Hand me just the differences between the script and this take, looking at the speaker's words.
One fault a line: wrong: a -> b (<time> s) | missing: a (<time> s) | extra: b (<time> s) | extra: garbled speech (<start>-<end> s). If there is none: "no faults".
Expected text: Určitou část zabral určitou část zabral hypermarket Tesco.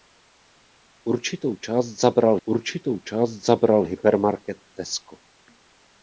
no faults